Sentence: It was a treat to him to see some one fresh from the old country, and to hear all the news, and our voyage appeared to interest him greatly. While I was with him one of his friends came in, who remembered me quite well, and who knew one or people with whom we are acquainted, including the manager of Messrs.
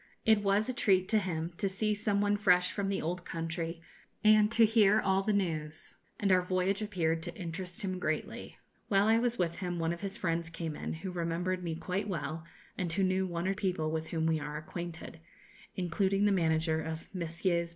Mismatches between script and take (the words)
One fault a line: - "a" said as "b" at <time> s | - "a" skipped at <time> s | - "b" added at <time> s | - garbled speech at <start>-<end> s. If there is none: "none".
none